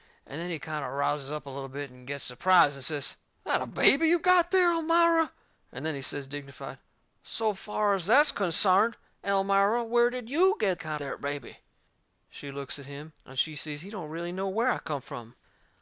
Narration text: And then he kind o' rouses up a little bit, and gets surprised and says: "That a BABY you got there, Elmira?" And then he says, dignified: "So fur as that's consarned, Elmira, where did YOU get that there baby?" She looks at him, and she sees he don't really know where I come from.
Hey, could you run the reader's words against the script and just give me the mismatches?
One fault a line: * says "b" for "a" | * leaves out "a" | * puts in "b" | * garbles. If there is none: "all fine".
* says "kind" for "that"